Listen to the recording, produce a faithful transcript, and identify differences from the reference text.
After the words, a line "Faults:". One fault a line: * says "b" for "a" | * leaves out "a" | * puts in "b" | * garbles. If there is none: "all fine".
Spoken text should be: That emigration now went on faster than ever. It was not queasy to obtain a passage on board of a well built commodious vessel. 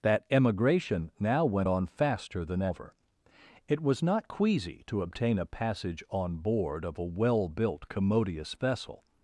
That emigration now went on faster than ever. It was not queasy to obtain a passage on board of a well built commodious vessel.
Faults:
all fine